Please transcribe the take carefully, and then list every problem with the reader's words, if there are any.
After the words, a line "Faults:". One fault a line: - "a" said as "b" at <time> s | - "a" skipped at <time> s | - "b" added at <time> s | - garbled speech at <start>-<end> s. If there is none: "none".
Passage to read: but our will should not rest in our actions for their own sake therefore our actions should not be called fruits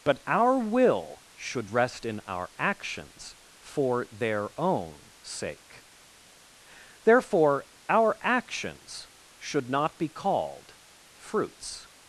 but our will should rest in our actions for their own sake therefore our actions should not be called fruits
Faults:
- "not" skipped at 1.7 s